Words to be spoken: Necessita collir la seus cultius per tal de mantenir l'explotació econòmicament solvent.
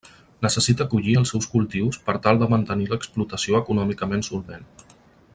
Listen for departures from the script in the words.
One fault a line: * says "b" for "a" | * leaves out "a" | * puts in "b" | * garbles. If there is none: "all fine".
* says "els" for "la"